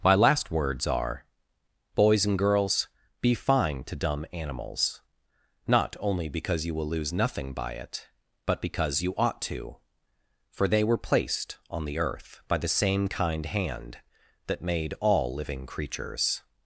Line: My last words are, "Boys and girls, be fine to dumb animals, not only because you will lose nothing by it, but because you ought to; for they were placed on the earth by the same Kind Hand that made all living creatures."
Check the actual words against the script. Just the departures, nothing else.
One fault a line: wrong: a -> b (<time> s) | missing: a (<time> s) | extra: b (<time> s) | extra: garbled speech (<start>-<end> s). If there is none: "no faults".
no faults